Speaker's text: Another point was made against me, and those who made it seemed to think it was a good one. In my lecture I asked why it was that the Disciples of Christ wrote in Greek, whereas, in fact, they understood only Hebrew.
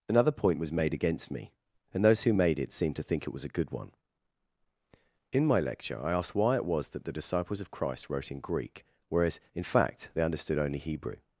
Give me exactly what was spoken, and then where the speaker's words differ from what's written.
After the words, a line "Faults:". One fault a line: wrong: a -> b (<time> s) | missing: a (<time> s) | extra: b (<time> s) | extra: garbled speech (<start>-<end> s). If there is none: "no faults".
Another point was made against me, and those who made it seemed to think it was a good one. In my lecture I asked why it was that the Disciples of Christ wrote in Greek, whereas, in fact, they understood only Hebrew.
Faults:
no faults